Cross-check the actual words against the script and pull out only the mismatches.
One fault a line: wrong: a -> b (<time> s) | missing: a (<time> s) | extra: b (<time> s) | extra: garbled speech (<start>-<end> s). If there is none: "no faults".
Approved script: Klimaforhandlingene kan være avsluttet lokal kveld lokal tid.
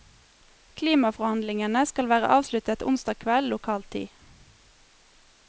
wrong: kan -> skal (1.9 s)
wrong: lokal -> onsdag (2.9 s)